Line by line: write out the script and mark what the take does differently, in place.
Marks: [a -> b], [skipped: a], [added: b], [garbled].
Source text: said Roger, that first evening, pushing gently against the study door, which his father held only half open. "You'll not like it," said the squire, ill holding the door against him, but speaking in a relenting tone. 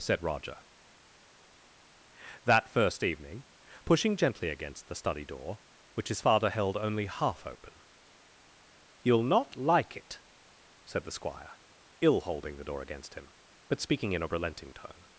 said Roger, that first evening, pushing gently against the study door, which his father held only half open. "You'll not like it," said the squire, ill holding the door against him, but speaking in a relenting tone.